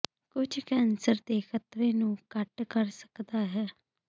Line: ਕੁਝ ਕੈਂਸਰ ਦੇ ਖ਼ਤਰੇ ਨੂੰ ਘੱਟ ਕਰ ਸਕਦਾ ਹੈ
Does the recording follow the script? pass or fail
pass